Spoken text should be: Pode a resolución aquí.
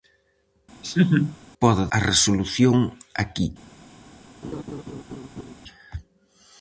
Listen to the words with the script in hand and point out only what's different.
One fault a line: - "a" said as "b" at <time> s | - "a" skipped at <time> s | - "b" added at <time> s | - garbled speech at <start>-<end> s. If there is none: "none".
none